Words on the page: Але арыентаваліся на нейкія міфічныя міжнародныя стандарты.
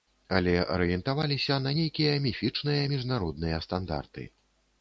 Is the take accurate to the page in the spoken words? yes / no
yes